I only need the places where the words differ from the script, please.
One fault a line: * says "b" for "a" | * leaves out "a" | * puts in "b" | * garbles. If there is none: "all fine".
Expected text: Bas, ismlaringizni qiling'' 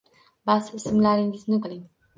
all fine